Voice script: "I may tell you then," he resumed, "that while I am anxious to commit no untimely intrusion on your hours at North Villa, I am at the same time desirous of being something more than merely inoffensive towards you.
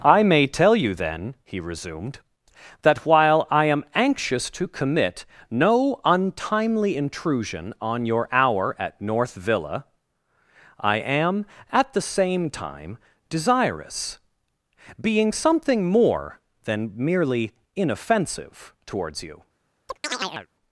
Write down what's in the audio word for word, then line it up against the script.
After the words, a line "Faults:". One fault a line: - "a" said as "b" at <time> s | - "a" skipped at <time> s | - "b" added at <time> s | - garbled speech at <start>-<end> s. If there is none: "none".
"I may tell you then," he resumed, "that while I am anxious to commit no untimely intrusion on your hour at North Villa, I am at the same time desirous being something more than merely inoffensive towards you.
Faults:
- "hours" said as "hour" at 8.3 s
- "of" skipped at 14.2 s